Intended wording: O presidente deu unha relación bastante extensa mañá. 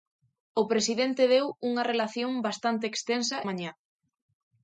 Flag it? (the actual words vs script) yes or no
no